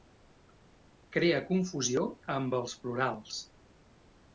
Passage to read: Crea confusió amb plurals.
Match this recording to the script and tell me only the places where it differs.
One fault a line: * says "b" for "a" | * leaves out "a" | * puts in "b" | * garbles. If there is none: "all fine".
* puts in "els"